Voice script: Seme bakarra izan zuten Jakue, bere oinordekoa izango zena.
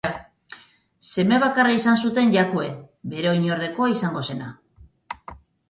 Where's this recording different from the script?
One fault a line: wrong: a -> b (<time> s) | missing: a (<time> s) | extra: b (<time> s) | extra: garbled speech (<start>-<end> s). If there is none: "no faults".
no faults